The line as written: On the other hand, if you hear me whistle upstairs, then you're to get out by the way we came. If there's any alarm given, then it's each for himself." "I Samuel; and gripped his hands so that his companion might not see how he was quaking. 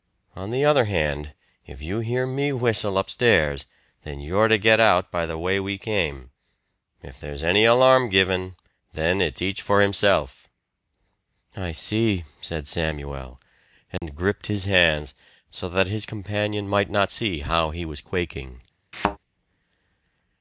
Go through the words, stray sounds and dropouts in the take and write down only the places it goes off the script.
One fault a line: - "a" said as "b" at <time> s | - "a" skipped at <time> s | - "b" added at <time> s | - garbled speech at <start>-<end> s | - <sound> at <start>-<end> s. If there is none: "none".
- "see said" added at 11.7 s
- dropout at 14.0-14.0 s
- thud at 18.9-19.2 s